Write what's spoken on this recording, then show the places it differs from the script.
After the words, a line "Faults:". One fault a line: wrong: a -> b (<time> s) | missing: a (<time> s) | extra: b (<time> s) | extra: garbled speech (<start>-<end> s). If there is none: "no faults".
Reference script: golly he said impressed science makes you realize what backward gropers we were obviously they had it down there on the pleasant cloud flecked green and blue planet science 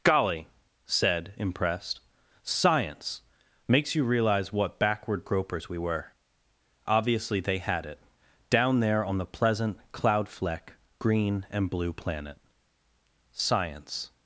golly said impressed science makes you realize what backward gropers we were obviously they had it down there on the pleasant cloud fleck green and blue planet science
Faults:
missing: he (0.5 s)
wrong: flecked -> fleck (10.3 s)